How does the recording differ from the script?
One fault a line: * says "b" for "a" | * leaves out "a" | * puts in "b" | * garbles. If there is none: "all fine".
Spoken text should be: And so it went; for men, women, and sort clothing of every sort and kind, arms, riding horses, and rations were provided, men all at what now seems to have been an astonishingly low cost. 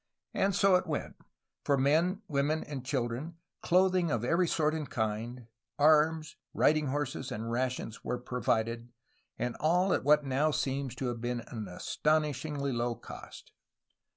* says "children" for "sort"
* says "and" for "men"